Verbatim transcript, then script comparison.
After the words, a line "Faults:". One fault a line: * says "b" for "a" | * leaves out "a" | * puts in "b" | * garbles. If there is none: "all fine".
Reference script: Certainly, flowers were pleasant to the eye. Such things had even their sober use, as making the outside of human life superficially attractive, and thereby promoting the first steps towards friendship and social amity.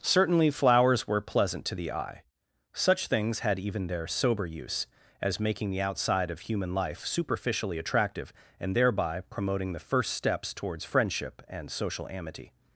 Certainly, flowers were pleasant to the eye. Such things had even their sober use, as making the outside of human life superficially attractive, and thereby promoting the first steps towards friendship and social amity.
Faults:
all fine